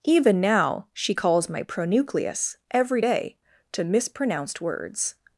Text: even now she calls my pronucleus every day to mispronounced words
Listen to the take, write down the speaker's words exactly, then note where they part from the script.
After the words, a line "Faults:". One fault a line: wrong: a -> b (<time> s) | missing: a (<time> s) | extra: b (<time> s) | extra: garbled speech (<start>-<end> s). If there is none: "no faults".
even now she calls my pronucleus every day to mispronounced words
Faults:
no faults